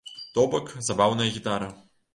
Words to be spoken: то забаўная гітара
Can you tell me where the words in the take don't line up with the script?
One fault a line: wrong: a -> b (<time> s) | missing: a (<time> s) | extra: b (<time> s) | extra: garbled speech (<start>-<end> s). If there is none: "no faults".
extra: бок (0.5 s)